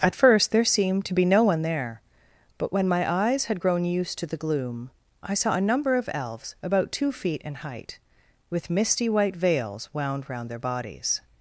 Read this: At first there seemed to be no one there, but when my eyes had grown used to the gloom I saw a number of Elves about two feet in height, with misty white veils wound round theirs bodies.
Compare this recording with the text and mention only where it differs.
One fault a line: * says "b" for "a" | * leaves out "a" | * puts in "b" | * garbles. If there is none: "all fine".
* says "their" for "theirs"